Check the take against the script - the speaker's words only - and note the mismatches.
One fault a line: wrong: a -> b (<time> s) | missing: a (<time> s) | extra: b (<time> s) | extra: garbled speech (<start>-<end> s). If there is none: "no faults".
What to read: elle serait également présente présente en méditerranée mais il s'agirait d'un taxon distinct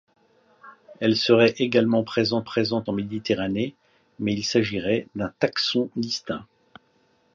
no faults